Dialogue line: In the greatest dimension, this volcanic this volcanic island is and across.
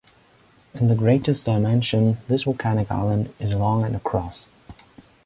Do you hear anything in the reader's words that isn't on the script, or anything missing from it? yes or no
yes